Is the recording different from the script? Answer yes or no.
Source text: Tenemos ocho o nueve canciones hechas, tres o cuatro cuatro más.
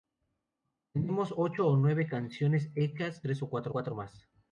no